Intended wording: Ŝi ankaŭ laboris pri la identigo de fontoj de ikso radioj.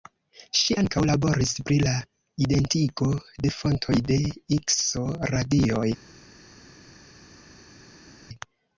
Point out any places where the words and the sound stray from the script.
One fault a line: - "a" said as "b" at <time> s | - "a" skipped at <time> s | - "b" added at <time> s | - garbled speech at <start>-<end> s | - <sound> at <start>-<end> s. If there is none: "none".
none